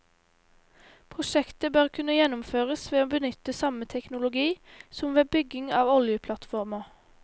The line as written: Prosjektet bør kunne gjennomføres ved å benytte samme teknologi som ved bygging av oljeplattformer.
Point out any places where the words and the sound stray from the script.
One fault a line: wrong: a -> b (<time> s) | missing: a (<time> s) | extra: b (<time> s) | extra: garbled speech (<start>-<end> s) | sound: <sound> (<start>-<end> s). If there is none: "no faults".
no faults